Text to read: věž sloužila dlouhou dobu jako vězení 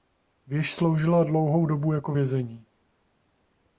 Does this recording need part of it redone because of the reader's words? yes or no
no